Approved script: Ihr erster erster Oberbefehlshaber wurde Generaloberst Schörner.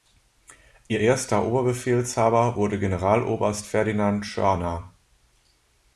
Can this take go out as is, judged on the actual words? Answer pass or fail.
fail